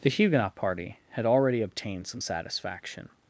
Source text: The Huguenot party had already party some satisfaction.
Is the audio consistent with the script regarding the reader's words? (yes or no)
no